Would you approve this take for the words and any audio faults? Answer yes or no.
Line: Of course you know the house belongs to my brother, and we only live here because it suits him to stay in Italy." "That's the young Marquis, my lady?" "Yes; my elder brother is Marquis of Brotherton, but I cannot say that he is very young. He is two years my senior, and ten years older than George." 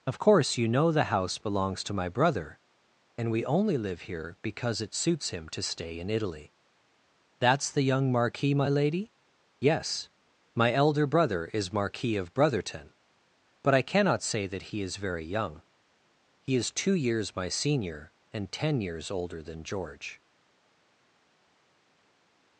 yes